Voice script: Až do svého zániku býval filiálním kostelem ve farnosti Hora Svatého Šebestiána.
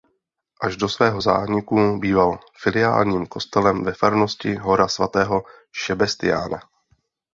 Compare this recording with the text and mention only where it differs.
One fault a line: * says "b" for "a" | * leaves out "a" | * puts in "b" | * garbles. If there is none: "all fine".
all fine